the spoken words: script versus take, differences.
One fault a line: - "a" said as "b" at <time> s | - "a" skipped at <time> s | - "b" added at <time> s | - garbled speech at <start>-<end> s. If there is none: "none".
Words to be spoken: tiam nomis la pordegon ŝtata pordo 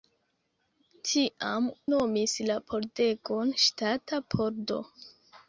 none